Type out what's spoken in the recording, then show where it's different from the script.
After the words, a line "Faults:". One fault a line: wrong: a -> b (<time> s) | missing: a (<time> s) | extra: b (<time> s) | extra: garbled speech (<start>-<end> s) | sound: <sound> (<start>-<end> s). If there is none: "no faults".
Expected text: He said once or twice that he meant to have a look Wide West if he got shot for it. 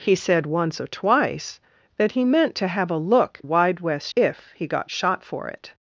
He said once or twice that he meant to have a look Wide West if he got shot for it.
Faults:
no faults